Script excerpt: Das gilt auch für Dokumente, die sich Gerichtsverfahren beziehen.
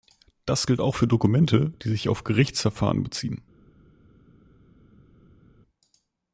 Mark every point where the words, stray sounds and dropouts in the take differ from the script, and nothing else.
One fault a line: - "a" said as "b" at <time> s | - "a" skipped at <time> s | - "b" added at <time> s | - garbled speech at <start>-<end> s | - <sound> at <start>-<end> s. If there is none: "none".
- "auf" added at 2.1 s